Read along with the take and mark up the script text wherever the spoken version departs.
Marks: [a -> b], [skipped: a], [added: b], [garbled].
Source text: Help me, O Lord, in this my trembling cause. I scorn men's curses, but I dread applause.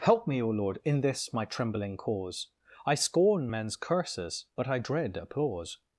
Help me, O Lord, in this my trembling cause. I scorn men's curses, but I dread applause.